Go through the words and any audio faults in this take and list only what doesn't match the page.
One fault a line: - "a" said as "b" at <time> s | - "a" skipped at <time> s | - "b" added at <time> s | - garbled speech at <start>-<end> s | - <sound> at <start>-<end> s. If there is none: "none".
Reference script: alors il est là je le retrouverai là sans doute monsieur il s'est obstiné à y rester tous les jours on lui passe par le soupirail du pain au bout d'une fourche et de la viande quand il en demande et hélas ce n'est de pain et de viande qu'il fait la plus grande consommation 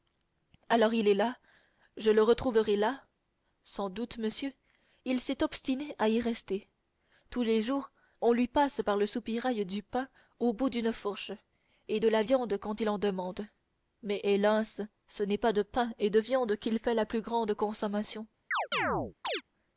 - "et" said as "mais" at 14.0 s
- "pas" added at 15.4 s
- chirp at 18.5-19.4 s